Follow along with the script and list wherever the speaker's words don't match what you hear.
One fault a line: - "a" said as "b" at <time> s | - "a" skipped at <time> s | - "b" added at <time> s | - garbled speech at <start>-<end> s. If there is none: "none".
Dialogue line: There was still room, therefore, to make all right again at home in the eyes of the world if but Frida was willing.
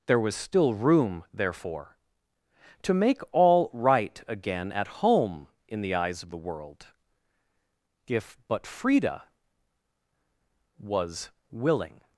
none